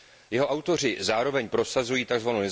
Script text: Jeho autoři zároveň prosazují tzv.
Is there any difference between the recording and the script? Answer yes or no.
no